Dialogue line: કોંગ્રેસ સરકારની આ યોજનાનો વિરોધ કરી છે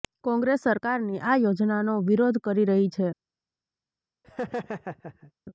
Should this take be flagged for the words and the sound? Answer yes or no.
yes